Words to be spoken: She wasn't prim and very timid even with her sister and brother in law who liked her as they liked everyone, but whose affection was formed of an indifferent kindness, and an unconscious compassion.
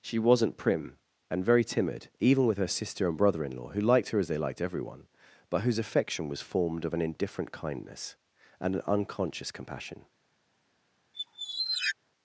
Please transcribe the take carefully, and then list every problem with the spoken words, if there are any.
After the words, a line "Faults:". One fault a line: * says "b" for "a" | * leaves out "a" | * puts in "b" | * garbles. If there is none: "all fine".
She wasn't prim and very timid even with her sister and brother in law who liked her as they liked everyone, but whose affection was formed of an indifferent kindness, and an unconscious compassion.
Faults:
all fine